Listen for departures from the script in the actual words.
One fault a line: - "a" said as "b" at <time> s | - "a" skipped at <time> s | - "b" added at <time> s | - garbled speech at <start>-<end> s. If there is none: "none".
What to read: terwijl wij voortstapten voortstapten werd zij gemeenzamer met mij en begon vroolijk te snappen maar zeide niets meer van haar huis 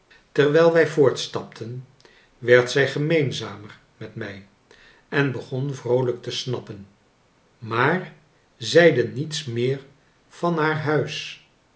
- "voortstapten" skipped at 1.9 s